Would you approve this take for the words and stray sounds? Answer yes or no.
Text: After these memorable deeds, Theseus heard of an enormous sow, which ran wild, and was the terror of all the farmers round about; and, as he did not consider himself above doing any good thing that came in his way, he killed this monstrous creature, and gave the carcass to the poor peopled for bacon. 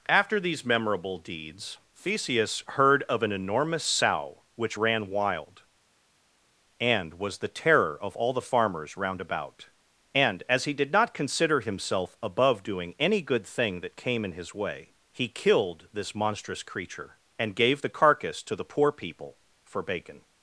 no